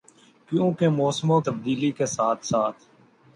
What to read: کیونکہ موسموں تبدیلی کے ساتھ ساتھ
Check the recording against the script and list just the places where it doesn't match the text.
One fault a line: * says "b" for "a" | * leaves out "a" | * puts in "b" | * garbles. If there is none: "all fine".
all fine